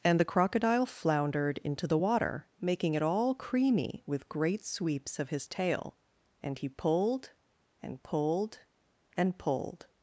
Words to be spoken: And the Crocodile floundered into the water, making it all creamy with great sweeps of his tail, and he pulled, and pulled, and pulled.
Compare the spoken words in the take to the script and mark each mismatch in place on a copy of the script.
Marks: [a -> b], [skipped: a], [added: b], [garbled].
And the Crocodile floundered into the water, making it all creamy with great sweeps of his tail, and he pulled, and pulled, and pulled.